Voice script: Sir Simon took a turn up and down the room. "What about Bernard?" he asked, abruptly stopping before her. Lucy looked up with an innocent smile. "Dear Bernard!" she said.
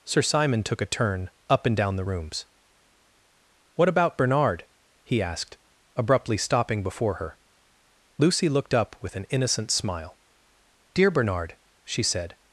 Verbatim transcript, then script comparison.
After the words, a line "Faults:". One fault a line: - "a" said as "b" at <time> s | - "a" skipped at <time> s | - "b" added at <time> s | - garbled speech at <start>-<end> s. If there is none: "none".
Sir Simon took a turn up and down the rooms. "What about Bernard?" he asked, abruptly stopping before her. Lucy looked up with an innocent smile. "Dear Bernard!" she said.
Faults:
- "room" said as "rooms" at 2.0 s